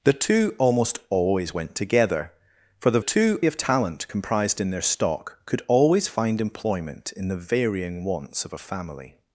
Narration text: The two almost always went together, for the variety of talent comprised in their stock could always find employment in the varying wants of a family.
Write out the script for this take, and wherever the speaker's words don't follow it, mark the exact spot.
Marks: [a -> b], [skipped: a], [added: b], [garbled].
The two almost always went together, for the [variety -> two] of talent comprised in their stock could always find employment in the varying wants of a family.